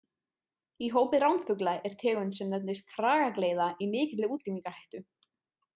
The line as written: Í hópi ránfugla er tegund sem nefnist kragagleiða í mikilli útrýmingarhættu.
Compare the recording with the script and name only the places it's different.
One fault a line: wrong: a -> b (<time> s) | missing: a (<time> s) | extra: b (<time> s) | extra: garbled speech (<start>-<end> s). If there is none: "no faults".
no faults